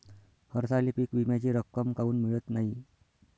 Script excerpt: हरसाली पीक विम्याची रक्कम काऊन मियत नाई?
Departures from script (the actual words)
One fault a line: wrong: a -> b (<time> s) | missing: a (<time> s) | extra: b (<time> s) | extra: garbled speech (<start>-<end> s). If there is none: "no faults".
no faults